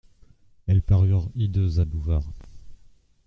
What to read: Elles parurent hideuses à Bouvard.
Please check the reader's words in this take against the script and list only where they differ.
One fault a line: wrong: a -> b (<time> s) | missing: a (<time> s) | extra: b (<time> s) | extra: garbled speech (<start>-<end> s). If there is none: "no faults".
no faults